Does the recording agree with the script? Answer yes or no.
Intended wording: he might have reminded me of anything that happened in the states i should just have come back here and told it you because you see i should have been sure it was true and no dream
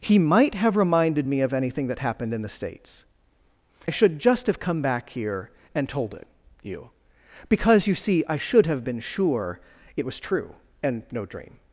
yes